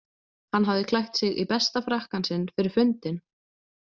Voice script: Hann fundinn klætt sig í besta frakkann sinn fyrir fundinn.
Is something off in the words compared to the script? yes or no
yes